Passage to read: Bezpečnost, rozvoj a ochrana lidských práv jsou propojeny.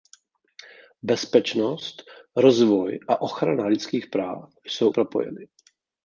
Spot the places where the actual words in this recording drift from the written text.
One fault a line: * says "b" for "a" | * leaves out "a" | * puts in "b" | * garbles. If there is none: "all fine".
all fine